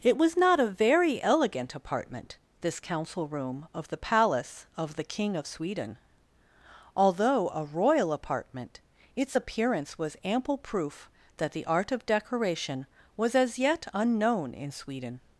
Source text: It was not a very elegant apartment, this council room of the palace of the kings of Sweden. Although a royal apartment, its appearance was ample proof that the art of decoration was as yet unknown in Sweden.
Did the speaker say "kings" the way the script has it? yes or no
no